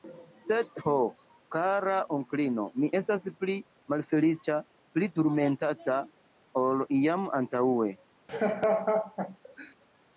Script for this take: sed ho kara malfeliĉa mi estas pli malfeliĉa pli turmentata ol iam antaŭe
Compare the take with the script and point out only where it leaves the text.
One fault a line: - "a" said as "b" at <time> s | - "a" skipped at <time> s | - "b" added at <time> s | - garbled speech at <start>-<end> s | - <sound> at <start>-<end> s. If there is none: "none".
- "malfeliĉa" said as "onklino" at 2.2 s
- laugh at 8.3-9.7 s